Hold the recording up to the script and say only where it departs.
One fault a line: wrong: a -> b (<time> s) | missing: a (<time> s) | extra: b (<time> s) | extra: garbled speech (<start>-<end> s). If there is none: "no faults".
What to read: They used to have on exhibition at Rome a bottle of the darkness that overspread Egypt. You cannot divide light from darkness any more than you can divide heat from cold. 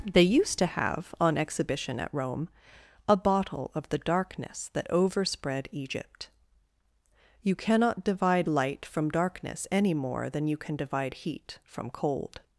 no faults